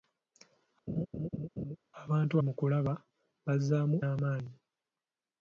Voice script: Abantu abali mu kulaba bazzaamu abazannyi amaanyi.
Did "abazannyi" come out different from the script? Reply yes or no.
yes